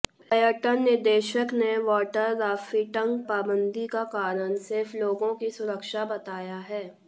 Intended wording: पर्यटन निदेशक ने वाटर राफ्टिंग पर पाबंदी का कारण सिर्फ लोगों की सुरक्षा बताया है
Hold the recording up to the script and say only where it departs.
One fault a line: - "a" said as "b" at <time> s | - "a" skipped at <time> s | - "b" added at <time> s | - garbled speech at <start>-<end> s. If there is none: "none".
- "पर" skipped at 3.2 s